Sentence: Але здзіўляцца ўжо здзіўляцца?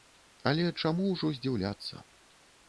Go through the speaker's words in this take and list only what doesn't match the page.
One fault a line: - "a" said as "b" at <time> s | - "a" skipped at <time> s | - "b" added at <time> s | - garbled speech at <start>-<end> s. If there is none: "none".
- "здзіўляцца" said as "чаму" at 0.8 s